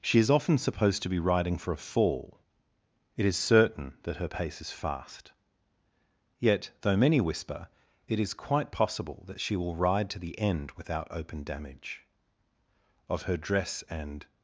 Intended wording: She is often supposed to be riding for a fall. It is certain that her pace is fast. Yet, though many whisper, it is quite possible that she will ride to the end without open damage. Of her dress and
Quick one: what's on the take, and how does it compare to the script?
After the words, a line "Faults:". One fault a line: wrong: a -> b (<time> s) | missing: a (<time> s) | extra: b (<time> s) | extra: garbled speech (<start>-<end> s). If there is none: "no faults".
She is often supposed to be riding for a fall. It is certain that her pace is fast. Yet, though many whisper, it is quite possible that she will ride to the end without open damage. Of her dress and
Faults:
no faults